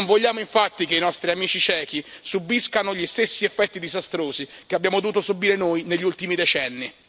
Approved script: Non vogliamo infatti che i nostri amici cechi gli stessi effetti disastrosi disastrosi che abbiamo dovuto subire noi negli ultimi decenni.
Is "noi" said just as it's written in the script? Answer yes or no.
yes